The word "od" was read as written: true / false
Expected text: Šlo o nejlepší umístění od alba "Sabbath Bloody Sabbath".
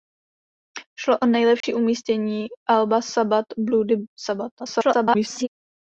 false